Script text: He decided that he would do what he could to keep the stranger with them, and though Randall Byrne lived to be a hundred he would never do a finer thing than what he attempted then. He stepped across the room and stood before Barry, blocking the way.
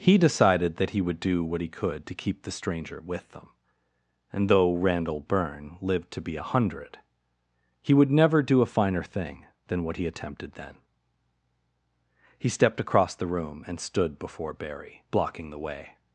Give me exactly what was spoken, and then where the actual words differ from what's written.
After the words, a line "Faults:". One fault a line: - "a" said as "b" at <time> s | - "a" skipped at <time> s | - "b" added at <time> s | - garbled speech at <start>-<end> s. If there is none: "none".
He decided that he would do what he could to keep the stranger with them, and though Randall Byrne lived to be a hundred he would never do a finer thing than what he attempted then. He stepped across the room and stood before Barry, blocking the way.
Faults:
none